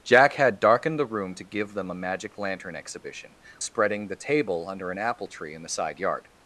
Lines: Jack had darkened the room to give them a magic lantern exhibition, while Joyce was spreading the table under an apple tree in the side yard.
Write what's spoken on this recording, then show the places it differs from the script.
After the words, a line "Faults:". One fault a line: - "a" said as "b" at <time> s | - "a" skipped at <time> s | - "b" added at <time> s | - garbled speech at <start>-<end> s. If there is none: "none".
Jack had darkened the room to give them a magic lantern exhibition, spreading the table under an apple tree in the side yard.
Faults:
- "while Joyce was" skipped at 3.4 s